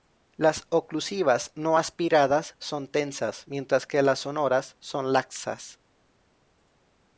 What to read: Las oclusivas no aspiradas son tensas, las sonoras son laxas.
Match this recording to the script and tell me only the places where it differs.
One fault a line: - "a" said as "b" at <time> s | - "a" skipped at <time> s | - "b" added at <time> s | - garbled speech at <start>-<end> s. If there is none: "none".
- "mientras que" added at 3.5 s